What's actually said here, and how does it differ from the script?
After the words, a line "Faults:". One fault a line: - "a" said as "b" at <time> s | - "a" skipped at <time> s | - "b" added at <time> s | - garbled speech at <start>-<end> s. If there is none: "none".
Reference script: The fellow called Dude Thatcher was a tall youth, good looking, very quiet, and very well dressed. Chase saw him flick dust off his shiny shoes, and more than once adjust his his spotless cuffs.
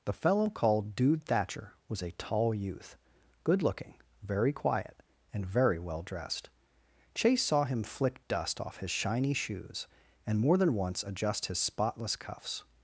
The fellow called Dude Thatcher was a tall youth, good looking, very quiet, and very well dressed. Chase saw him flick dust off his shiny shoes, and more than once adjust his spotless cuffs.
Faults:
- "his" skipped at 11.6 s